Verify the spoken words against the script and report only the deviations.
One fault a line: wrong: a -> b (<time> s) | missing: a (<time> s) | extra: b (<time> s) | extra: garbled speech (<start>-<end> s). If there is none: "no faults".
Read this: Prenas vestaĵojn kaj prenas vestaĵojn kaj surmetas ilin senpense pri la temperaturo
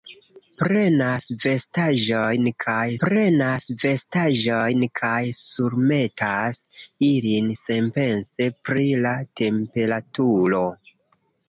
no faults